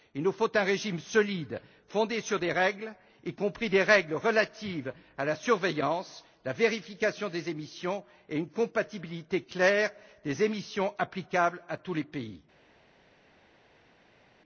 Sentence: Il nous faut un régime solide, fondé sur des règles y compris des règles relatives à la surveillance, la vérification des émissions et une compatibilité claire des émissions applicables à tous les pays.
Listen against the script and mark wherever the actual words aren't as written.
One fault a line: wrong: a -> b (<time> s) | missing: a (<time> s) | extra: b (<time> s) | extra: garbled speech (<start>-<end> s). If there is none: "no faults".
no faults